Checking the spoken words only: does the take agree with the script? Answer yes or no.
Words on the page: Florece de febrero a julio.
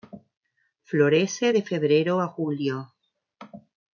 yes